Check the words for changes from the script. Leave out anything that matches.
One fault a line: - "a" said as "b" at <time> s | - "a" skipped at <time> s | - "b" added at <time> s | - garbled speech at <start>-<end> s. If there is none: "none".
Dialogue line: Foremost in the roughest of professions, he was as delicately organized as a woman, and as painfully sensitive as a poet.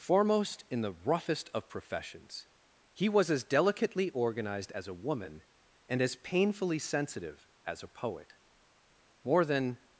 - "More than" added at 9.2 s